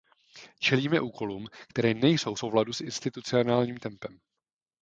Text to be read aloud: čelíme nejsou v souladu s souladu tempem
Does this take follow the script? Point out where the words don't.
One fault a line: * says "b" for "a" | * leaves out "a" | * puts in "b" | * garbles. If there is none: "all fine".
* puts in "úkolům které"
* says "institucionálním" for "souladu"